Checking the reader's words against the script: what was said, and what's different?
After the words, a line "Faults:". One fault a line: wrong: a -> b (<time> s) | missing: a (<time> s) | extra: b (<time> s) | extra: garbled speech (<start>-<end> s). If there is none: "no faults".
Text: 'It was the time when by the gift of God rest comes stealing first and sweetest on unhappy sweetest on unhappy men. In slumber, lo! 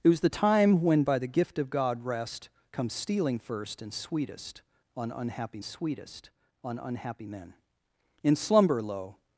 'It was the time when by the gift of God rest comes stealing first and sweetest on unhappy sweetest on unhappy men. In slumber, lo!
Faults:
no faults